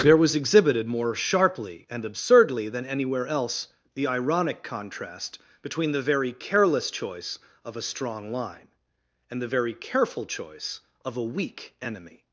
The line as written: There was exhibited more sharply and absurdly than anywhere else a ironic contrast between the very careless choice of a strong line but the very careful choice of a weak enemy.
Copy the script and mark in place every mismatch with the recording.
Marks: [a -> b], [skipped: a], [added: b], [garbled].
There was exhibited more sharply and absurdly than anywhere else [a -> the] ironic contrast between the very careless choice of a strong line [but -> and] the very careful choice of a weak enemy.